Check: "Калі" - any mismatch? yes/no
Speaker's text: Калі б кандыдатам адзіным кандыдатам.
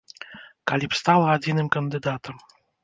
no